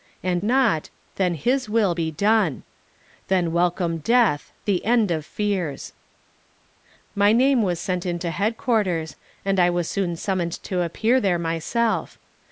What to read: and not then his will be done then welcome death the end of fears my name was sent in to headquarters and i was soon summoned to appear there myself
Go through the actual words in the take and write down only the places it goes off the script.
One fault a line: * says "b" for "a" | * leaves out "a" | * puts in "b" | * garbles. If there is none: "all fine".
all fine